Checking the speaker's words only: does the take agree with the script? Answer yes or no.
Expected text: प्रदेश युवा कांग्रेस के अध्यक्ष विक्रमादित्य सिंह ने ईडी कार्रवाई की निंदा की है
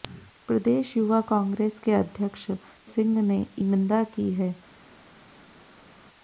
no